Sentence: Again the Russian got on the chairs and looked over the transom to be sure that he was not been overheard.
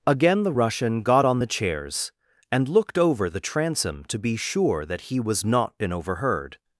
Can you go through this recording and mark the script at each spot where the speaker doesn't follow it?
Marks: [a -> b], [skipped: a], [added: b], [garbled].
Again the Russian got on the chairs and looked over the transom to be sure that he was not been overheard.